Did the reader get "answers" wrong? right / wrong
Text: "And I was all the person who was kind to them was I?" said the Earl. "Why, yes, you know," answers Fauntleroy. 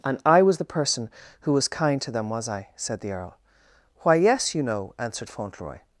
wrong